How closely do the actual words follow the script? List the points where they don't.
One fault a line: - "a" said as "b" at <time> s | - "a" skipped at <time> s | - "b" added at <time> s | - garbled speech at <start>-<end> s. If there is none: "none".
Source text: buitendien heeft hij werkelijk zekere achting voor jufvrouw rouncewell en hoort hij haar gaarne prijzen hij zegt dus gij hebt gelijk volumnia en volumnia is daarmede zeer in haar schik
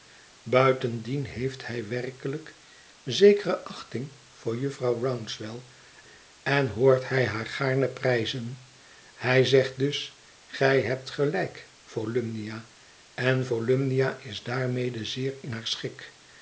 none